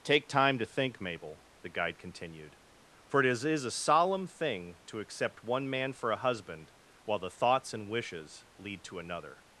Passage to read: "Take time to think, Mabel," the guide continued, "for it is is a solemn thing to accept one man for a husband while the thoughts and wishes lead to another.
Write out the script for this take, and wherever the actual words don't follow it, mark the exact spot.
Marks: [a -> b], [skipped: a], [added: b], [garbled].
"Take time to think, Mabel," the guide continued, "for it is is a solemn thing to accept one man for a husband while the thoughts and wishes lead to another.